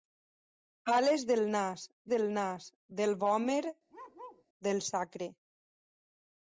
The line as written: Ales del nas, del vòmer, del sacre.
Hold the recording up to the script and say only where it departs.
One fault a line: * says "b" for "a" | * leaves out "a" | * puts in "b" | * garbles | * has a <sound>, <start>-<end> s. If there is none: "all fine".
* puts in "nas del"
* has a bark, 3.9-4.4 s